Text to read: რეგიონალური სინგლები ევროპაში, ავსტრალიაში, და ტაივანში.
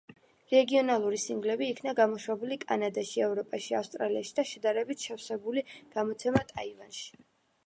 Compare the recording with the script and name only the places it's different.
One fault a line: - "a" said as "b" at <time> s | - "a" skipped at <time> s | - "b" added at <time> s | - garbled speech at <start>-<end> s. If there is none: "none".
- "იქნა გამოშვებული კანადაში" added at 1.7 s
- "შედარებით შევსებული გამოცემა" added at 4.5 s